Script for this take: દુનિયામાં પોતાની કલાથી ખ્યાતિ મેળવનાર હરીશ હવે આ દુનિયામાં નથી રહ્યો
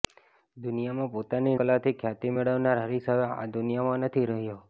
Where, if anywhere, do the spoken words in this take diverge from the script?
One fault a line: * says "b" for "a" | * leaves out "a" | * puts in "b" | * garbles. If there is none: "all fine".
all fine